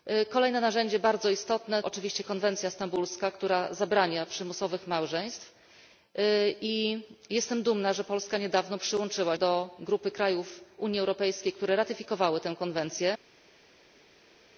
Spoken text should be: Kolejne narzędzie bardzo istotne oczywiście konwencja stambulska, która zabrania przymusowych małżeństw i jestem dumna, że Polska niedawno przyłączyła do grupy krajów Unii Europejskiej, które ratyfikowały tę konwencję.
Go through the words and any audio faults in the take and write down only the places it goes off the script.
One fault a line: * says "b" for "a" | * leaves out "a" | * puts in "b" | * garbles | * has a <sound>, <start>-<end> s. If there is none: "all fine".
all fine